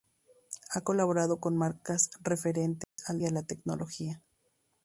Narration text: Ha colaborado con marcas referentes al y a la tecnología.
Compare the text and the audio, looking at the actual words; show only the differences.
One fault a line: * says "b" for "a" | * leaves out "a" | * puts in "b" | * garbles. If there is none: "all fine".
all fine